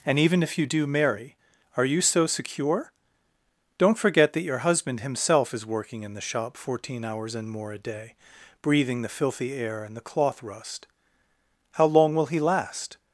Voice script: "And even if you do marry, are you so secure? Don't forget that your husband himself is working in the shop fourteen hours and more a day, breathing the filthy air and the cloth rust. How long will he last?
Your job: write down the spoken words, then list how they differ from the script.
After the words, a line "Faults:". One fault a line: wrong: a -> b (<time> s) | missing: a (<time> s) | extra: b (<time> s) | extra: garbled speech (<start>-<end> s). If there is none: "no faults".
"And even if you do marry, are you so secure? Don't forget that your husband himself is working in the shop fourteen hours and more a day, breathing the filthy air and the cloth rust. How long will he last?
Faults:
no faults